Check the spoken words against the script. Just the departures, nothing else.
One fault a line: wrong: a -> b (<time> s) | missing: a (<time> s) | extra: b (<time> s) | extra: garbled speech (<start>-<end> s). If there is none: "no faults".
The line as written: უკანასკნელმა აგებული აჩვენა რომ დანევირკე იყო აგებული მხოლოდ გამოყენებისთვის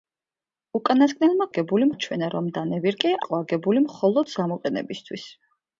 no faults